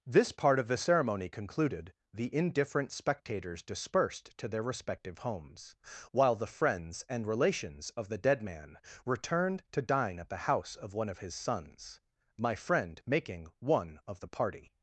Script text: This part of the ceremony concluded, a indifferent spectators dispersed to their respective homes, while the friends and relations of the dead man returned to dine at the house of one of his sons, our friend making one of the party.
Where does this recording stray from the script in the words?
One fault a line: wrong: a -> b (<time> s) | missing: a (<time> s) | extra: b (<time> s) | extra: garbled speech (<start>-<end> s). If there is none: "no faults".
wrong: a -> the (2.1 s)
wrong: our -> my (12.4 s)